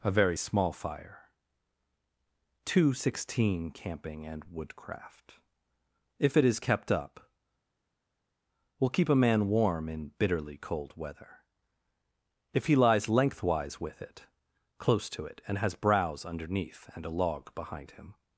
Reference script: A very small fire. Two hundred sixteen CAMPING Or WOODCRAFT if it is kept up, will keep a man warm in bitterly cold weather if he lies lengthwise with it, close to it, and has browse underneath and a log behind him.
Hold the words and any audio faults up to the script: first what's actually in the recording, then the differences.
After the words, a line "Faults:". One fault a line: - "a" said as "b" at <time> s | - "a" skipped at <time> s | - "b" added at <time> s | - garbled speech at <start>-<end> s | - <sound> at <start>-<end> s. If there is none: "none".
A very small fire. Two hundred sixteen CAMPING AND WOODCRAFT if it is kept up, will keep a man warm in bitterly cold weather if he lies lengthwise with it, close to it, and has browse underneath and a log behind him.
Faults:
- "Or" said as "AND" at 4.2 s